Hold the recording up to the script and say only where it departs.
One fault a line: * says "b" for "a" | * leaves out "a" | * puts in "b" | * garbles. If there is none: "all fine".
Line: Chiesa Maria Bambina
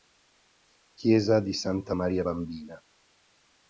* puts in "di Santa"